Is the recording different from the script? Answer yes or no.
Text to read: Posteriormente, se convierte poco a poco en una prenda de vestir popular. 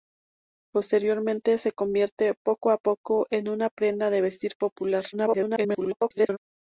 yes